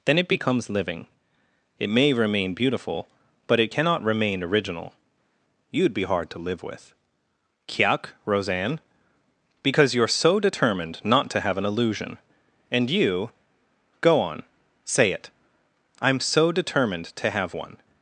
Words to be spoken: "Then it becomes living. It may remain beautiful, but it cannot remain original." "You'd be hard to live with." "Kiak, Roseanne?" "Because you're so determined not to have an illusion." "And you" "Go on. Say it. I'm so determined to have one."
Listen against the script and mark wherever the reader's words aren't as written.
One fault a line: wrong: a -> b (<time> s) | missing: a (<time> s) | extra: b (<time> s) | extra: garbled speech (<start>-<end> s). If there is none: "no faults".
no faults